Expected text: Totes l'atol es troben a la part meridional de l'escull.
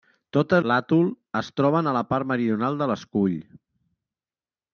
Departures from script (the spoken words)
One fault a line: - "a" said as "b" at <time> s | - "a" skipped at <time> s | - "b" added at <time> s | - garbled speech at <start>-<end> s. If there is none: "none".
none